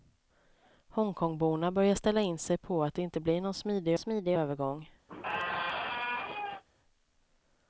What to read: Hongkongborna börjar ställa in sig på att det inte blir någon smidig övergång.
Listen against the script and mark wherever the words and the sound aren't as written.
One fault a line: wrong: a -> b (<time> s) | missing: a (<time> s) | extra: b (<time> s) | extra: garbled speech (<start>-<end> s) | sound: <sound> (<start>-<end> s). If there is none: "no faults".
extra: smidig (4.0 s)
sound: squeak (5.1-6.6 s)